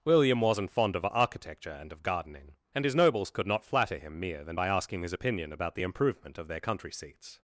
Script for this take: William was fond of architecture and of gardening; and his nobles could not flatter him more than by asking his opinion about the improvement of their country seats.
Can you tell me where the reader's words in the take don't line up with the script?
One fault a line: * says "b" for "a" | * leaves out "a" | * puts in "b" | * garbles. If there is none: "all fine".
* says "wasn't" for "was"
* says "mere" for "more"